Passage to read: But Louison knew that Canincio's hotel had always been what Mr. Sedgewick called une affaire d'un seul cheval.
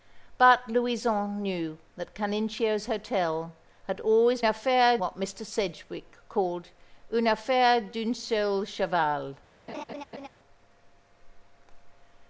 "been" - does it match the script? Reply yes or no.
no